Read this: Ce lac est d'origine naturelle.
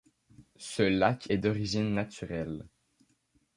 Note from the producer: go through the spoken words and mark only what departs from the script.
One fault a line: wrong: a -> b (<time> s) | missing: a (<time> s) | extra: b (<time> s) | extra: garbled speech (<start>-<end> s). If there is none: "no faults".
no faults